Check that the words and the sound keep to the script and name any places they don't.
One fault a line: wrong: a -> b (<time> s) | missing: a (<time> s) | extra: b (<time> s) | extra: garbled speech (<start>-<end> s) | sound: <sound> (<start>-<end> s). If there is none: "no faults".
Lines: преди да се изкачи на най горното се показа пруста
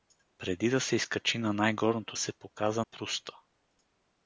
no faults